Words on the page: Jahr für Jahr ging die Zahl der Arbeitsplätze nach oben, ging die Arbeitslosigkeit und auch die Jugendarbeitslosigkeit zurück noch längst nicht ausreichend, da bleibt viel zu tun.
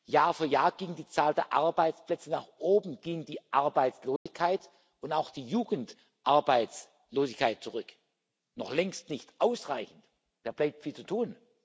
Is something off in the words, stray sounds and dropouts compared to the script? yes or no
yes